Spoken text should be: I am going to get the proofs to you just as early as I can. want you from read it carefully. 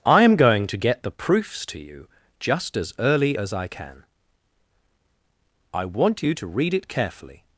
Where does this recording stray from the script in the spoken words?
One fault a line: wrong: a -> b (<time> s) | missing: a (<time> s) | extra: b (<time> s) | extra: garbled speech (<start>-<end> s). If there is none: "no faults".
extra: I (5.7 s)
wrong: from -> to (6.3 s)